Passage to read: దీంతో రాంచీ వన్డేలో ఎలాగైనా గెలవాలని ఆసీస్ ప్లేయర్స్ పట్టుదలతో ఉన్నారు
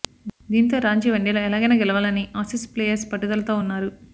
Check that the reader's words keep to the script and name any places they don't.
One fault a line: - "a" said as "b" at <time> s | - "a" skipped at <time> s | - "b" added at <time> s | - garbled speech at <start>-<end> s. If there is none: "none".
none